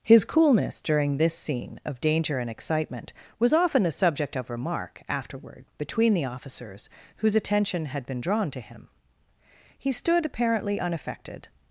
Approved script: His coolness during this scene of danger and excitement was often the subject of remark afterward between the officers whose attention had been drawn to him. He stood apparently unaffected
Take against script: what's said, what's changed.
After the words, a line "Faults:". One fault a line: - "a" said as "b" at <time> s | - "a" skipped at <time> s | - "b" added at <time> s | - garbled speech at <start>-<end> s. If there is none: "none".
His coolness during this scene of danger and excitement was often the subject of remark afterward between the officers whose attention had been drawn to him. He stood apparently unaffected
Faults:
none